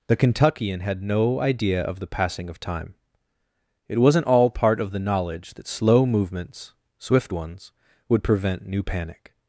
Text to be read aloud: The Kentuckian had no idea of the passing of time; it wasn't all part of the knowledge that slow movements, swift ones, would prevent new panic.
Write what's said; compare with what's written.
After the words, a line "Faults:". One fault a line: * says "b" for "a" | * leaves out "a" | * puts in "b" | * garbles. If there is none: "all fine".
The Kentuckian had no idea of the passing of time; it wasn't all part of the knowledge that slow movements, swift ones, would prevent new panic.
Faults:
all fine